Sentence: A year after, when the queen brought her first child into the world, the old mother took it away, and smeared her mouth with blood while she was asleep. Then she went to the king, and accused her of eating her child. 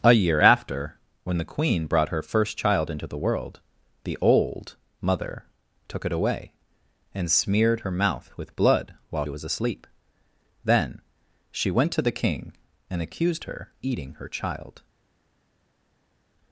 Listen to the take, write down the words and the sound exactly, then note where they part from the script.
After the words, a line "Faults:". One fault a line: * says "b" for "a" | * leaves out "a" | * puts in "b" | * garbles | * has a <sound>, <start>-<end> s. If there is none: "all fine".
A year after, when the queen brought her first child into the world, the old mother took it away, and smeared her mouth with blood while was asleep. Then she went to the king, and accused her eating her child.
Faults:
* leaves out "she"
* leaves out "of"